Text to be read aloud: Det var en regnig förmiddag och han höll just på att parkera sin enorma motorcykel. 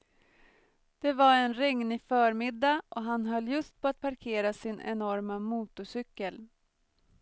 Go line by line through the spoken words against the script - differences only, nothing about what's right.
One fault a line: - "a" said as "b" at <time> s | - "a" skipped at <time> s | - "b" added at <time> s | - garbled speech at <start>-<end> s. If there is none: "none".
none